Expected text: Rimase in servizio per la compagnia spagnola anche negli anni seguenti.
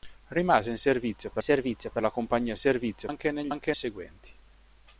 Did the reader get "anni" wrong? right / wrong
wrong